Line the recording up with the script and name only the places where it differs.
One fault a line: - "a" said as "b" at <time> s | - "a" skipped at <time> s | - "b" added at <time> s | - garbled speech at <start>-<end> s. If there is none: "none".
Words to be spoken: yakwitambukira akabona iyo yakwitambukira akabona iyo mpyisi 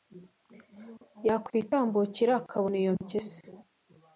- "yakwitambukira akabona iyo" skipped at 2.9 s